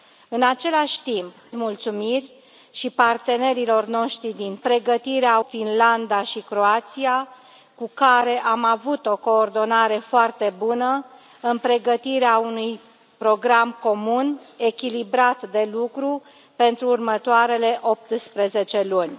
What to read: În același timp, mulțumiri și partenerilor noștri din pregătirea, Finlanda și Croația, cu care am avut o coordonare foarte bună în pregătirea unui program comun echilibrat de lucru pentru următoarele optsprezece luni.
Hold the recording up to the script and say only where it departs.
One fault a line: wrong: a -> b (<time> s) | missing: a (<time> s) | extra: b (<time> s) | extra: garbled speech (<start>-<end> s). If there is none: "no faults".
no faults